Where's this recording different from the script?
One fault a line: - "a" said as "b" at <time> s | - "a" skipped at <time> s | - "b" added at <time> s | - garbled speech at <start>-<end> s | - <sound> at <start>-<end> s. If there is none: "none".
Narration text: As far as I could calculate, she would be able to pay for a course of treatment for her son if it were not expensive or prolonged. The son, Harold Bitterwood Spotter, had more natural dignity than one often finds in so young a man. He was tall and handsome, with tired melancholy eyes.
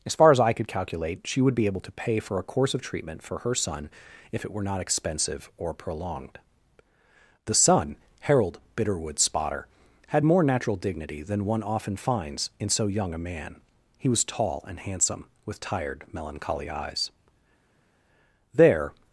- "There" added at 18.5 s